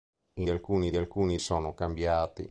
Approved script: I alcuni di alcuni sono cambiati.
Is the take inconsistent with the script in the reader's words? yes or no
no